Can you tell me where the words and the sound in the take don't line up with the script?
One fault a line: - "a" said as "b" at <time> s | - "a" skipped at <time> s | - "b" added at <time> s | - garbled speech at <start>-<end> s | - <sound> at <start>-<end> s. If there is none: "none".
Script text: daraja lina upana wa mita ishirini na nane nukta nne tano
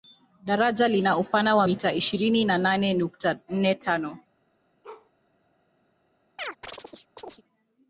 - bark at 4.8-5.1 s
- chirp at 6.4-7.4 s